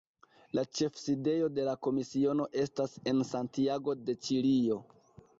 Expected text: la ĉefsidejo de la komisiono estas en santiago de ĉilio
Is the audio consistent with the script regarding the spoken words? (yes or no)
yes